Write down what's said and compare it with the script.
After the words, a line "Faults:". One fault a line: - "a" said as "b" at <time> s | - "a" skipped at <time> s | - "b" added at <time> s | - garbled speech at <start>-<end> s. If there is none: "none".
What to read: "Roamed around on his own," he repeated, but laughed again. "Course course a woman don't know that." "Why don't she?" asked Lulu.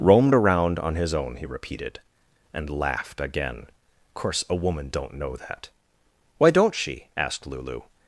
"Roamed around on his own," he repeated, and laughed again. "Course a woman don't know that." "Why don't she?" asked Lulu.
Faults:
- "but" said as "and" at 2.5 s
- "course" skipped at 4.4 s